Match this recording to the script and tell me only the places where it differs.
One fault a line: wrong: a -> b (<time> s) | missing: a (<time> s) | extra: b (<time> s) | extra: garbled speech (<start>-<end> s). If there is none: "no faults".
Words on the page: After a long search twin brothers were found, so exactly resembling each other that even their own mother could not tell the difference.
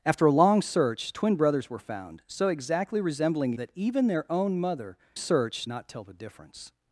missing: each other (3.5 s)
wrong: could -> search (5.2 s)